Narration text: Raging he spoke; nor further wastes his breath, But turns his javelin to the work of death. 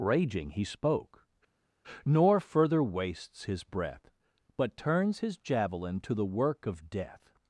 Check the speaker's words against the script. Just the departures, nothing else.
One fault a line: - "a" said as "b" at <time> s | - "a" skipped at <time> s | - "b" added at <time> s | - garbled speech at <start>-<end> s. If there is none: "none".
none